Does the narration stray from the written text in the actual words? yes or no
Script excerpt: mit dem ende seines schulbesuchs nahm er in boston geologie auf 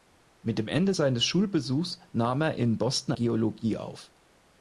no